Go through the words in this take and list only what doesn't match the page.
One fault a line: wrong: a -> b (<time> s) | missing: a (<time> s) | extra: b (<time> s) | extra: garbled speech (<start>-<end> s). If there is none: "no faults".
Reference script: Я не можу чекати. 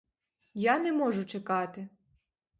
no faults